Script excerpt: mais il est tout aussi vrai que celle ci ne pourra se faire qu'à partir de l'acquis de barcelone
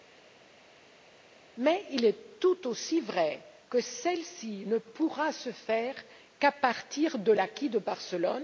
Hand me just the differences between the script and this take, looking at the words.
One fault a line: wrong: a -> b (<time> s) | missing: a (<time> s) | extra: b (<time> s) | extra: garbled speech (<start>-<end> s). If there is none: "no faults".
no faults